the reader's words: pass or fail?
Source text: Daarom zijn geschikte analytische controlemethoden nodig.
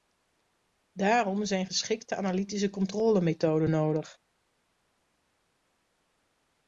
pass